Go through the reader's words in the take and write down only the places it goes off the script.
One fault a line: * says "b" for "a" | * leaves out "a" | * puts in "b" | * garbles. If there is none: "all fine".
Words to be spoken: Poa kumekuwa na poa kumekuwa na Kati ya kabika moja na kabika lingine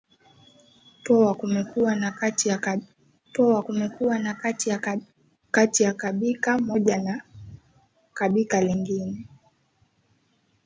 all fine